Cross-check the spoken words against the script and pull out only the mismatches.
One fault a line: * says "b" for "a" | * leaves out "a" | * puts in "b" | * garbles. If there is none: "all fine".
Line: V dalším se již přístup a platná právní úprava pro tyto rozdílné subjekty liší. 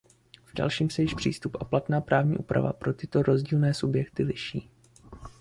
all fine